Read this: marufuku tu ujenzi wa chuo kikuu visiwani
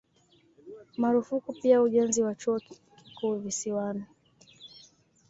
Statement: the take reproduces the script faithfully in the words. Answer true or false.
false